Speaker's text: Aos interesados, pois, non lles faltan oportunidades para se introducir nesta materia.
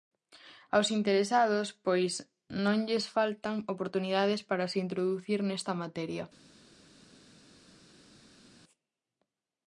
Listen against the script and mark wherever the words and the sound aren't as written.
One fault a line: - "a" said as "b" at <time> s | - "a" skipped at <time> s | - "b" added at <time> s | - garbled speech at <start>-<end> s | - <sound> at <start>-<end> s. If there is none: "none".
none